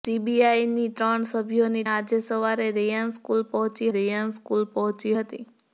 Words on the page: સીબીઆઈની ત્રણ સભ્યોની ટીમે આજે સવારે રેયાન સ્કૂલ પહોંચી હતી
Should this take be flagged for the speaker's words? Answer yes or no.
yes